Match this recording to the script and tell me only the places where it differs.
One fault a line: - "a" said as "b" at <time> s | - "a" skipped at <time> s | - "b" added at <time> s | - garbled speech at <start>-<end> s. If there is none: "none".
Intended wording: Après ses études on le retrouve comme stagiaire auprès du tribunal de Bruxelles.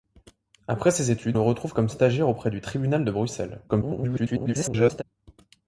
- "on" skipped at 1.4 s
- garbled speech at 3.7-5.0 s